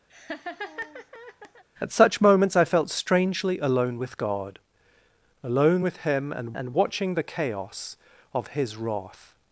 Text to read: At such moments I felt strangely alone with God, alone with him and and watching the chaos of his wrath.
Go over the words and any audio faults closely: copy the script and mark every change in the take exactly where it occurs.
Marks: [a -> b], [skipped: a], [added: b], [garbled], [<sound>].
[laugh] At such moments I felt strangely alone with God, alone with him and and watching the chaos of his wrath.